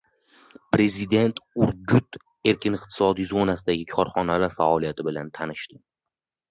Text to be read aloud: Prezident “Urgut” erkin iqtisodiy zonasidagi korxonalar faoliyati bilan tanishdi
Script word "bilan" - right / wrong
right